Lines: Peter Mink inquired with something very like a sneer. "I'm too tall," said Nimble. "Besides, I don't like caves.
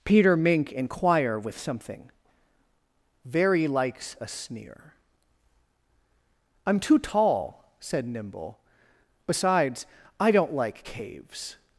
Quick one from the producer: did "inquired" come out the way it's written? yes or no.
no